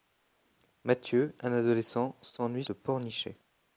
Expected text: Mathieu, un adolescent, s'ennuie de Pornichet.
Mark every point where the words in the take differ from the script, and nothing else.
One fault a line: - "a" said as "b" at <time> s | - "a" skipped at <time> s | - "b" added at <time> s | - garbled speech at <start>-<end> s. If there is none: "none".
none